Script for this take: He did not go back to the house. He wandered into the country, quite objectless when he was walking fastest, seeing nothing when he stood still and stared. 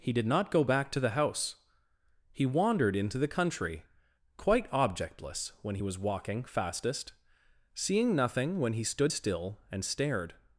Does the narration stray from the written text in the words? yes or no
no